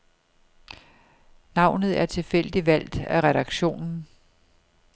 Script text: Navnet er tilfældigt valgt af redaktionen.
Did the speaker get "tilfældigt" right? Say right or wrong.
right